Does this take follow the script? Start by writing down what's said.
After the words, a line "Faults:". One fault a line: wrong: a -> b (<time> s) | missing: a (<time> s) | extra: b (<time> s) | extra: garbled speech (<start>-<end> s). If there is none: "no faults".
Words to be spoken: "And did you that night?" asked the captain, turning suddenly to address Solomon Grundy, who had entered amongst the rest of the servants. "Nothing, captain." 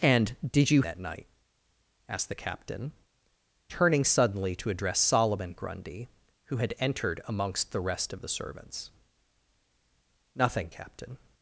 "And did you that night?" asked the captain, turning suddenly to address Solomon Grundy, who had entered amongst the rest of the servants. "Nothing, captain."
Faults:
no faults